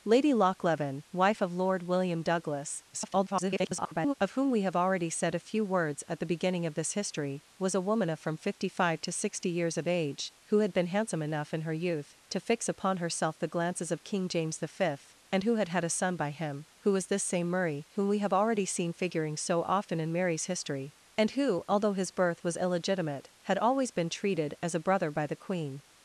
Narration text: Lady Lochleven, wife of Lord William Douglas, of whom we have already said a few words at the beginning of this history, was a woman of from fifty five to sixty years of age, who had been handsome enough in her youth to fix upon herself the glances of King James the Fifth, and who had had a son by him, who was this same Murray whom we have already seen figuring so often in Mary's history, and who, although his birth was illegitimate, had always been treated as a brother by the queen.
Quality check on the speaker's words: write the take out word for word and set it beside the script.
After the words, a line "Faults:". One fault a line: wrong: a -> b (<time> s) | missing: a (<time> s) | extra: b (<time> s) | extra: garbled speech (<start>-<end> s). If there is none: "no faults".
Lady Lochleven, wife of Lord William Douglas, [garbled] of whom we have already said a few words at the beginning of this history, was a woman of from fifty five to sixty years of age, who had been handsome enough in her youth to fix upon herself the glances of King James the Fifth, and who had had a son by him, who was this same Murray whom we have already seen figuring so often in Mary's history, and who, although his birth was illegitimate, had always been treated as a brother by the queen.
Faults:
extra: garbled speech (2.9-4.1 s)